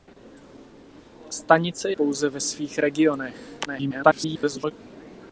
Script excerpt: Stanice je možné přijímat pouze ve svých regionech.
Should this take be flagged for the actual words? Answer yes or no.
yes